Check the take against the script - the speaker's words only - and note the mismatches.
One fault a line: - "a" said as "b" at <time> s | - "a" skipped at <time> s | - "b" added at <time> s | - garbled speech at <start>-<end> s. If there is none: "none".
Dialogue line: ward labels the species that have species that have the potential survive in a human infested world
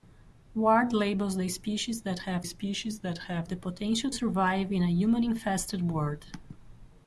none